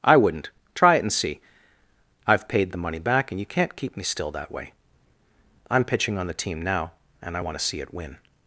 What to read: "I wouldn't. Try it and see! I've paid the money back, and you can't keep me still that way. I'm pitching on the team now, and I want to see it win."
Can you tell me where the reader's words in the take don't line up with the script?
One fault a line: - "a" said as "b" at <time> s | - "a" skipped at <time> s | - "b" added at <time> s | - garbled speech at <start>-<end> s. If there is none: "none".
none